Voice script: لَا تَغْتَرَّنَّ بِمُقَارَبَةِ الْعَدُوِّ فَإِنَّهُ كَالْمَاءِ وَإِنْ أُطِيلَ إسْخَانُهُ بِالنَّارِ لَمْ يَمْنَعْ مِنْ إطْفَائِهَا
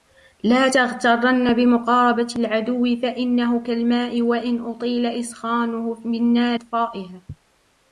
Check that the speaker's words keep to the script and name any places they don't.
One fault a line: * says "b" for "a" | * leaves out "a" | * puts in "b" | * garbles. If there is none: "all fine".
* leaves out "لَمْ يَمْنَعْ مِنْ"